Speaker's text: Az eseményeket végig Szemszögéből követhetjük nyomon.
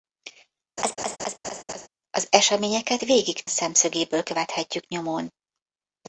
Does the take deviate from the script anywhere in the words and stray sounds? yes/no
yes